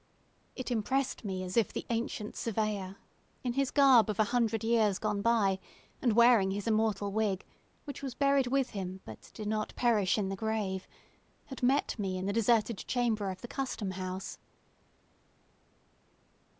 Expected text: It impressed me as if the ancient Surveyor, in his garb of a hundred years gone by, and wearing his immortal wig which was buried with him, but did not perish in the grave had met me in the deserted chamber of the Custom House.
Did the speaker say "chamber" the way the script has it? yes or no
yes